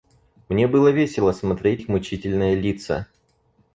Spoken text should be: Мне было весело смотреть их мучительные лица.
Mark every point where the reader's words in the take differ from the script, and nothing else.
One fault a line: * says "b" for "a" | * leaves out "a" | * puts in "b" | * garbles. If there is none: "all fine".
all fine